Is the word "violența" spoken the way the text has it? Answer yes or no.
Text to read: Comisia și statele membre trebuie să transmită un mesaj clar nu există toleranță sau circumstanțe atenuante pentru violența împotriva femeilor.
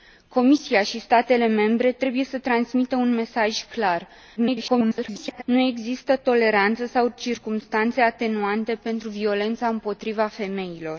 yes